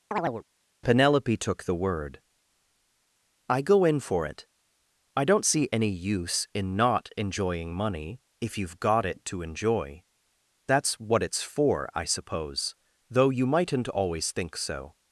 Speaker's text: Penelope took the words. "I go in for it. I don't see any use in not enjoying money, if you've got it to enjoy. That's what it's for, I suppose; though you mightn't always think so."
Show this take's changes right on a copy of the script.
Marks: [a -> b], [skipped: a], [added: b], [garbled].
Penelope took the [words. -> word] "I go in for it. I don't see any use in not enjoying money, if you've got it to enjoy. That's what it's for, I suppose; though you mightn't always think so."